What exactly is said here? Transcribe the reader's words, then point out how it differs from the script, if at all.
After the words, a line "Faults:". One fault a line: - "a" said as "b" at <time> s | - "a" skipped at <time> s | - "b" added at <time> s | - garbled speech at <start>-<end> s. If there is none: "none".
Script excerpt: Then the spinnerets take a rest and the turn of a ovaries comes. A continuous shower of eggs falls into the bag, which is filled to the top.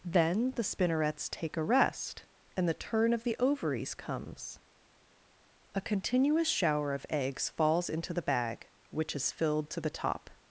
Then the spinnerets take a rest and the turn of the ovaries comes. A continuous shower of eggs falls into the bag, which is filled to the top.
Faults:
- "a" said as "the" at 3.2 s